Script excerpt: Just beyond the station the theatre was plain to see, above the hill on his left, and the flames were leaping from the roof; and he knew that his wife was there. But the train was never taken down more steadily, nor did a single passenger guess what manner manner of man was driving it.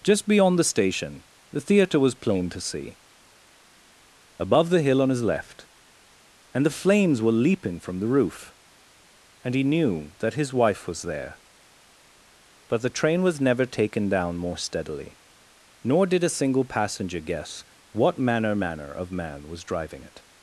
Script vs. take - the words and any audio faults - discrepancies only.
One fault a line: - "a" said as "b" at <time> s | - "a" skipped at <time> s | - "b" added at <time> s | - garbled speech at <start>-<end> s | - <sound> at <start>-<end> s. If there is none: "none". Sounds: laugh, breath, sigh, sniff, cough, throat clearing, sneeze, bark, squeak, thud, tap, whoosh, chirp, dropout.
none